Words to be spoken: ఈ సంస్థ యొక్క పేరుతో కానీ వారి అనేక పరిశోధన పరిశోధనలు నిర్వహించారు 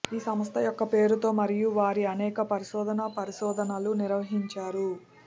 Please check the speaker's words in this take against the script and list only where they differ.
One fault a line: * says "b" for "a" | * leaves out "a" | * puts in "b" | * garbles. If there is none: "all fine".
* says "మరియు" for "కానీ"